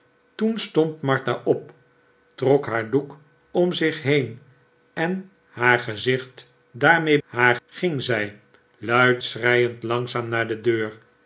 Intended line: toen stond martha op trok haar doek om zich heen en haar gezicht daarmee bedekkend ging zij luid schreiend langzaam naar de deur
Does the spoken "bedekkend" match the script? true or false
false